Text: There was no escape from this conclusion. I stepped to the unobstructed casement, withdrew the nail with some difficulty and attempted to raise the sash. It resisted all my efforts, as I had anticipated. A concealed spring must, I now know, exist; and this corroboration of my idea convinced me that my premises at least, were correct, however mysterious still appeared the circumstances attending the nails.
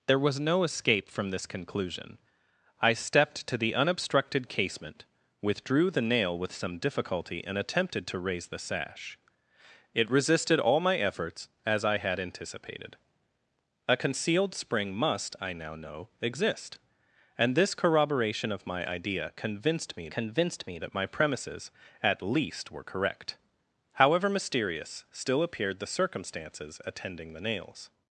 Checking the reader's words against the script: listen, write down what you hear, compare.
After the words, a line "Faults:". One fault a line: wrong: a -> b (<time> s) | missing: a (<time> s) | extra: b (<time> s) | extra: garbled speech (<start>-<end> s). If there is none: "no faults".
There was no escape from this conclusion. I stepped to the unobstructed casement, withdrew the nail with some difficulty and attempted to raise the sash. It resisted all my efforts, as I had anticipated. A concealed spring must, I now know, exist; and this corroboration of my idea convinced me convinced me that my premises at least, were correct, however mysterious still appeared the circumstances attending the nails.
Faults:
extra: convinced me (20.1 s)